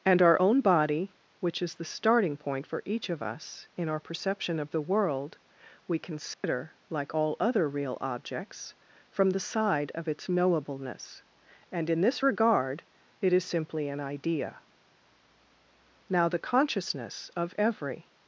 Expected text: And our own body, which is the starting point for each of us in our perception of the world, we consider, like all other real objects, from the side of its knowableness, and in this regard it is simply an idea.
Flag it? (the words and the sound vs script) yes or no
yes